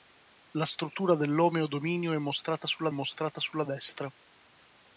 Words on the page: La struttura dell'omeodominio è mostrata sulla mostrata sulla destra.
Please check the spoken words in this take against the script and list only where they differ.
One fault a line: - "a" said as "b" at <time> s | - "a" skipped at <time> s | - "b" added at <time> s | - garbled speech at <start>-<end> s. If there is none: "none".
none